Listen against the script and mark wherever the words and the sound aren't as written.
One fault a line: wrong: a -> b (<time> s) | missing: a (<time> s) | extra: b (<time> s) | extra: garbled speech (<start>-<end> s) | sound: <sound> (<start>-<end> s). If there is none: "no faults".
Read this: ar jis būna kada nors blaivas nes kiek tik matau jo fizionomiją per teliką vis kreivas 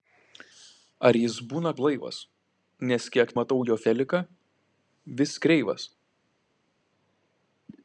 missing: kada nors (1.7 s)
missing: tik (3.4 s)
missing: fizionomiją per (3.8 s)